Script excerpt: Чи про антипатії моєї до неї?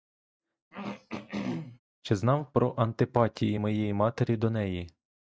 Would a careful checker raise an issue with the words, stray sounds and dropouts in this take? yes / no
yes